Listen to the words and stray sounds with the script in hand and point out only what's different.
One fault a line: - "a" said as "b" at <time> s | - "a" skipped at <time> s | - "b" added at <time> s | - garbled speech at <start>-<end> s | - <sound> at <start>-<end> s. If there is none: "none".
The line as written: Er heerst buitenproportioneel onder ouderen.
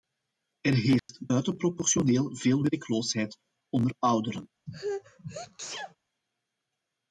- dropout at 1.0-1.1 s
- "veel werkloosheid" added at 2.4 s
- sneeze at 4.7-6.0 s